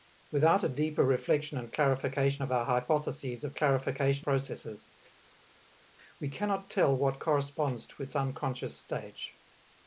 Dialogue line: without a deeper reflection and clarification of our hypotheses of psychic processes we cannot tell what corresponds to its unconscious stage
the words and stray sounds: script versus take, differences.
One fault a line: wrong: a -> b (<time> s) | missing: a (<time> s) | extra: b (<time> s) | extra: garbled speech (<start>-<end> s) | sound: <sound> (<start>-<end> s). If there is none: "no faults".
wrong: psychic -> clarification (3.5 s)